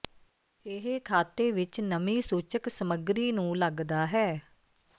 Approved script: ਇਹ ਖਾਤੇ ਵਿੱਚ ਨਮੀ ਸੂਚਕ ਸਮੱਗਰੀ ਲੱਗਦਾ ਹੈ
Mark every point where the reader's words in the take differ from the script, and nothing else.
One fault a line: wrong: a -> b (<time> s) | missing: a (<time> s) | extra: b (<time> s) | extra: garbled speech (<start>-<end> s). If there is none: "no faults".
extra: ਨੂੰ (3.3 s)